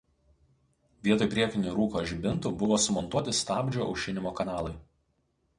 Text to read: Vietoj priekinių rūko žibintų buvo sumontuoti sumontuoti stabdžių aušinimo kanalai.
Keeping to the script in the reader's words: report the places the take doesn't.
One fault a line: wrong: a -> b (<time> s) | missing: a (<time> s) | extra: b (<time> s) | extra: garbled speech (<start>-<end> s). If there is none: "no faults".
missing: sumontuoti (3.4 s)